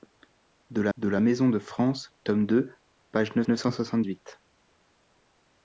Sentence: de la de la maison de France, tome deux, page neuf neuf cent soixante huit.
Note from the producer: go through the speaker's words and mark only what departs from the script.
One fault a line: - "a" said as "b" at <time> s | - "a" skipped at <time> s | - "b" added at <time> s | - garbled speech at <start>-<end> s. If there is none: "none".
none